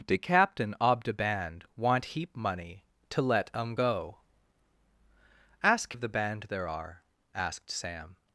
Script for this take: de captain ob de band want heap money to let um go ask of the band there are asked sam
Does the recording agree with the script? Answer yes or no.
yes